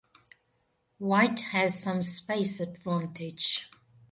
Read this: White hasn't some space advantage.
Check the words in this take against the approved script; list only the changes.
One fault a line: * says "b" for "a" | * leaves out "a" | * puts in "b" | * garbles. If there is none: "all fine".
* says "has" for "hasn't"